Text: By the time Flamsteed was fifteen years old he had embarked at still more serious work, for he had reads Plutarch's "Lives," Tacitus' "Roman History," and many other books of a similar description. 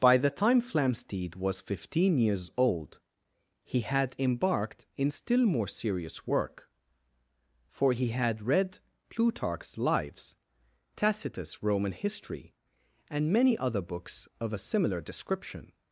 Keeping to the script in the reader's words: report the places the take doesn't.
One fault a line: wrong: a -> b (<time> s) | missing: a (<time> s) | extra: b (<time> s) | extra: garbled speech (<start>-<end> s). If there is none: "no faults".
wrong: at -> in (5.0 s)
wrong: reads -> read (8.4 s)